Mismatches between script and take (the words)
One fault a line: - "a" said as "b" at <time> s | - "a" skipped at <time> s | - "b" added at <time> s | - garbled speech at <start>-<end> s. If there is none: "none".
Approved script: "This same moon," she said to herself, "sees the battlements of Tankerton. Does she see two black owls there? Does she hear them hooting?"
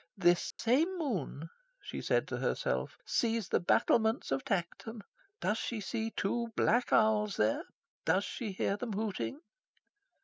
none